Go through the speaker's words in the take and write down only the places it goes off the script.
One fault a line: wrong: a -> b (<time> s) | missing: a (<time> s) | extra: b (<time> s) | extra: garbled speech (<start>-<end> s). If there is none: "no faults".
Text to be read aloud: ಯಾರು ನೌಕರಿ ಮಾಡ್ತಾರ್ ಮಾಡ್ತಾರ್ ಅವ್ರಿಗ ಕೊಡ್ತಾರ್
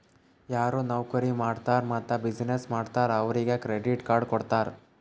extra: ಮತ್ತ ಬಿಸಿನ್ನೆಸ್ (1.9 s)
extra: ಕ್ರೆಡಿಟ್ ಕಾರ್ಡ್ (3.6 s)